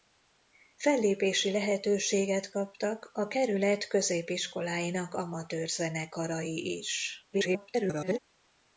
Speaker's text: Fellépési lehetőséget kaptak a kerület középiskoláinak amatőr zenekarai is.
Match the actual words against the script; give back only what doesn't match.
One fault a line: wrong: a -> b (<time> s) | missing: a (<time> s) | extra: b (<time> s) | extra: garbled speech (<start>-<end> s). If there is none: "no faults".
extra: garbled speech (7.3-8.2 s)